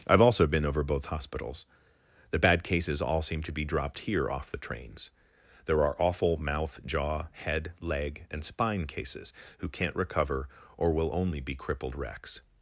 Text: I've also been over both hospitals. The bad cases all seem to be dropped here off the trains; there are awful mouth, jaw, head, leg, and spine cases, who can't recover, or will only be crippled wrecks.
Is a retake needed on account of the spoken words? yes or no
no